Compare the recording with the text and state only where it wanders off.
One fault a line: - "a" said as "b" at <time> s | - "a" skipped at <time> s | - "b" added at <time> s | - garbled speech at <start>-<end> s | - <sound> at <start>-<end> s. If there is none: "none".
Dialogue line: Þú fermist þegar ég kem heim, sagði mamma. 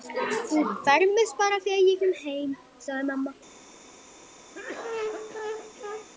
- "bara" added at 1.4 s
- cough at 4.5-6.1 s